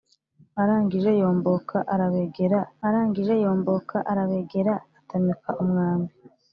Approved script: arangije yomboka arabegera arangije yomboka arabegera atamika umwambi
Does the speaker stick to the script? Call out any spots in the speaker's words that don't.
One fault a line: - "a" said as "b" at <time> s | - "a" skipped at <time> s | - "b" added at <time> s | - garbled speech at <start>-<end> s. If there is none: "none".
none